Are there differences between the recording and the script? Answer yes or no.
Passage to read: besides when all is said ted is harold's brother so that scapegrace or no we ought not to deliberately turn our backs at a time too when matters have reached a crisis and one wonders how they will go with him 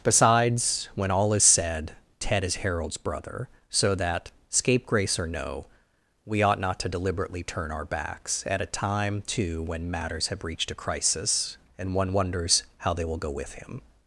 no